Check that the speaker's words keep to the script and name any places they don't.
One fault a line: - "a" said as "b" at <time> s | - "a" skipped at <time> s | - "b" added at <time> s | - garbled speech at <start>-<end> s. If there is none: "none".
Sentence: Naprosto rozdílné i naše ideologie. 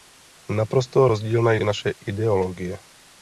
none